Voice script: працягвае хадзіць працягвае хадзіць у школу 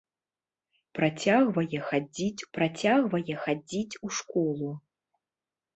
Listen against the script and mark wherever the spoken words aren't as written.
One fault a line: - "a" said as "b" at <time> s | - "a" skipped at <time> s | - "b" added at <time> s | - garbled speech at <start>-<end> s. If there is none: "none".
none